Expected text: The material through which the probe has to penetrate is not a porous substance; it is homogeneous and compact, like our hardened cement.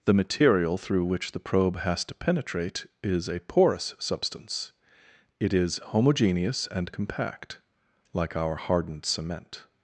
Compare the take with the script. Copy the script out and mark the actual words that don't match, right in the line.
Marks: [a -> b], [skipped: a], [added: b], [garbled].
The material through which the probe has to penetrate is [skipped: not] a porous substance; it is homogeneous and compact, like our hardened cement.